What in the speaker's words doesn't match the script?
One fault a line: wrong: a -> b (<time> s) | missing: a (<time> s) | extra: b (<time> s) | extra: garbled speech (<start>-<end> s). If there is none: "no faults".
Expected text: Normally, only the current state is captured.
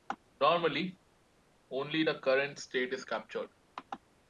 no faults